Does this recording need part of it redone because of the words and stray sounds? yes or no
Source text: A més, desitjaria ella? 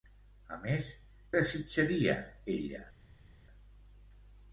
no